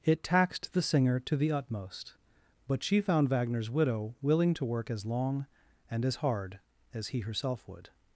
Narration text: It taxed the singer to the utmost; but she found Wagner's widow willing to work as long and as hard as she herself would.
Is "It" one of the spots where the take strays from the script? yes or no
no